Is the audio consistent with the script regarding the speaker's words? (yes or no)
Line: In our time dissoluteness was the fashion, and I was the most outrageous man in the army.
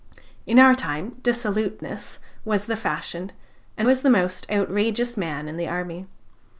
no